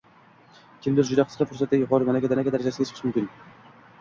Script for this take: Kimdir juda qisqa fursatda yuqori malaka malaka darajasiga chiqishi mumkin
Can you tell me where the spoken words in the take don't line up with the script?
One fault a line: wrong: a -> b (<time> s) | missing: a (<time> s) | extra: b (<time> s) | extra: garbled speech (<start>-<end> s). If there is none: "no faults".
no faults